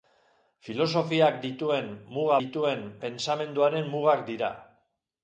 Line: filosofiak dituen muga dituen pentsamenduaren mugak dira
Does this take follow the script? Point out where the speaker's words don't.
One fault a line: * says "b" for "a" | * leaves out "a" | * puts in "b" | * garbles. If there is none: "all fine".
all fine